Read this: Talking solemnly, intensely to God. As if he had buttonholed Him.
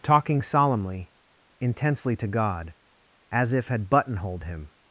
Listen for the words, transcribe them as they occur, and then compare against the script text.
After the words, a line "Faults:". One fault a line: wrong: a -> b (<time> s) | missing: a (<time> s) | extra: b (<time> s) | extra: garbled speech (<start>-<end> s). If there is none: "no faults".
Talking solemnly, intensely to God. As if had buttonholed Him.
Faults:
missing: he (3.7 s)